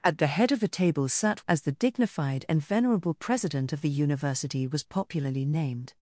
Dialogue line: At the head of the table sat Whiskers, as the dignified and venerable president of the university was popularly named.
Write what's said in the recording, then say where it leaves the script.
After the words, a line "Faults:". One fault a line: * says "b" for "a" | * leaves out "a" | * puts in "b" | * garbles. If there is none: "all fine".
At the head of the table sat As the dignified and venerable president of the university was popularly named.
Faults:
* leaves out "Whiskers"